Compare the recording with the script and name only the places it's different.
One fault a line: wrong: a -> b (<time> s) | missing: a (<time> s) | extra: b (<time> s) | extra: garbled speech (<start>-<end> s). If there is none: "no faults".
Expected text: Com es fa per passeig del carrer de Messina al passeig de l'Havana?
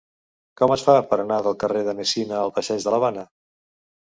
wrong: passeig -> anar (1.2 s)